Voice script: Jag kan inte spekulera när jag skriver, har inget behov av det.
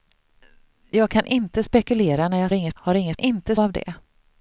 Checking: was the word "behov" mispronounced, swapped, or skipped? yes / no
yes